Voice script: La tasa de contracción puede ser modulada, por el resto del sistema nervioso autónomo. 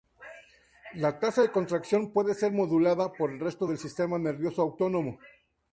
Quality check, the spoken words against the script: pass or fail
pass